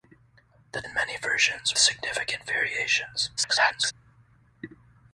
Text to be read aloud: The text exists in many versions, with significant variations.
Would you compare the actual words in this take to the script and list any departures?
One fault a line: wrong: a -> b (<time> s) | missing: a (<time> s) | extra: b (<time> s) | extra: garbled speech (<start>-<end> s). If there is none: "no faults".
missing: text exists (0.8 s)
missing: with (1.8 s)
extra: garbled speech (3.4-3.9 s)